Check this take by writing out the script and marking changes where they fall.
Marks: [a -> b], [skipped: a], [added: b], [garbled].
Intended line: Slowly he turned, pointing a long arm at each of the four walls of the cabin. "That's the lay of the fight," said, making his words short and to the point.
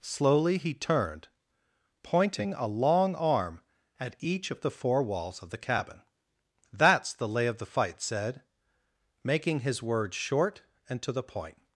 Slowly he turned, pointing a long arm at each of the four walls of the cabin. "That's the lay of the fight," said, making his words short and to the point.